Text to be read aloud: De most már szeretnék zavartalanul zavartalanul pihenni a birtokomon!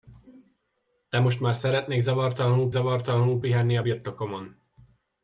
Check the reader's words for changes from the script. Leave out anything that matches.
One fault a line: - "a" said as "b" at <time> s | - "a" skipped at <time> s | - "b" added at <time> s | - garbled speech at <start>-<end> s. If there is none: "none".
none